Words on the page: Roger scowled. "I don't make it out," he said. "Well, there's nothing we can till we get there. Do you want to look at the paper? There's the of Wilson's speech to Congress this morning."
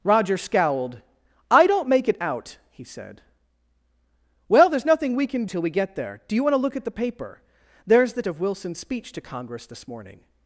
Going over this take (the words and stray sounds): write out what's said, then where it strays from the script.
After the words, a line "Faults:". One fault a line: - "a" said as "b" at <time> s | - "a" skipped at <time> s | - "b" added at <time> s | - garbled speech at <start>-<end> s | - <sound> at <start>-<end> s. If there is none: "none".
Roger scowled. "I don't make it out," he said. "Well, there's nothing we can till we get there. Do you want to look at the paper? There's the of Wilson's speech to Congress this morning."
Faults:
none